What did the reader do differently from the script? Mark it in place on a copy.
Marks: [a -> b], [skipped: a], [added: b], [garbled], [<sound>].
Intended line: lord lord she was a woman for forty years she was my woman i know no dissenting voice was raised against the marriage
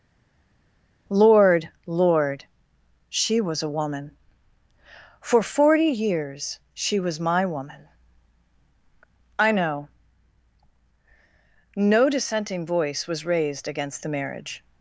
lord lord she was a woman for forty years she was my woman i know no dissenting voice was raised against the marriage